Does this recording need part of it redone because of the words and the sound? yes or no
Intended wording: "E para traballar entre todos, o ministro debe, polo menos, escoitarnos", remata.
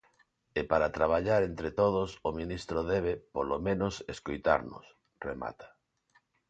no